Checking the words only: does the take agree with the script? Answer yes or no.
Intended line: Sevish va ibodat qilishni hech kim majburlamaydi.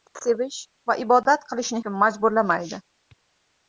no